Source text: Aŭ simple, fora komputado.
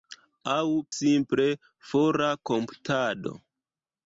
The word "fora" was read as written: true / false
true